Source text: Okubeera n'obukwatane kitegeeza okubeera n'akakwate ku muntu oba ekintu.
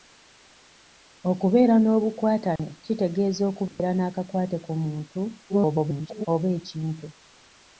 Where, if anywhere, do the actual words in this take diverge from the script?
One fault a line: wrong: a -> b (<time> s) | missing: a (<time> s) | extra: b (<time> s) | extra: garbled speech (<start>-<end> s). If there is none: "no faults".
extra: garbled speech (5.5-6.3 s)